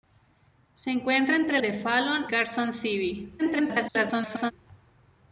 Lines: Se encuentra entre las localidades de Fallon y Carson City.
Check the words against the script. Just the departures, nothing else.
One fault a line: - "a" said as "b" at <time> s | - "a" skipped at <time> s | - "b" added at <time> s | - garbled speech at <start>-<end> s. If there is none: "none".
- "las localidades" skipped at 1.6 s
- "y" skipped at 2.3 s
- garbled speech at 3.4-4.5 s